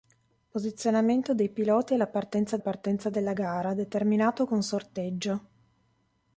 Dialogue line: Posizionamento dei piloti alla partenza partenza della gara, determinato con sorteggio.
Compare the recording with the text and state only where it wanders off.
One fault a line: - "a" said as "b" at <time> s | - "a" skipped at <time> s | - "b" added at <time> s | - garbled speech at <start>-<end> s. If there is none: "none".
none